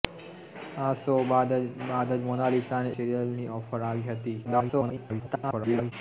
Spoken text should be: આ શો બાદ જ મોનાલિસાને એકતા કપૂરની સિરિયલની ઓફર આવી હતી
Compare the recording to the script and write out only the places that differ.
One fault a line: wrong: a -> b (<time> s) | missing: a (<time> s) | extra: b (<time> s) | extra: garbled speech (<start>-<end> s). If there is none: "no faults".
missing: એકતા કપૂરની (3.0 s)
extra: garbled speech (4.4-5.9 s)